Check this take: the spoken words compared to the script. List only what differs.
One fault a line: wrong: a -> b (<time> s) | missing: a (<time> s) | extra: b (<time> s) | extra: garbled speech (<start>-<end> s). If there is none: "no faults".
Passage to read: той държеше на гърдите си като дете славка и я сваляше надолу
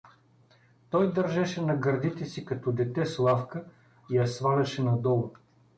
no faults